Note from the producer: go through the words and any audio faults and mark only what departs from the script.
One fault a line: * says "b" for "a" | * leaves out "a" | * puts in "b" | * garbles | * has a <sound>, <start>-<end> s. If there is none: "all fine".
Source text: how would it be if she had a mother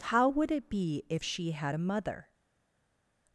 all fine